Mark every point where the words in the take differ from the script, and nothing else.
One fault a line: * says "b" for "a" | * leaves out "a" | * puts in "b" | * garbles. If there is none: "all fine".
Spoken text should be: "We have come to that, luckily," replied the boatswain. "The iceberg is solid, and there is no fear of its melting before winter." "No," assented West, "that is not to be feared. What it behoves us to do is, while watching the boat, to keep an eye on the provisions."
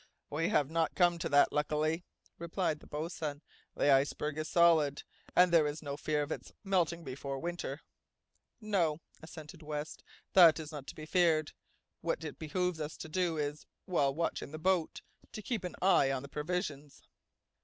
* puts in "not"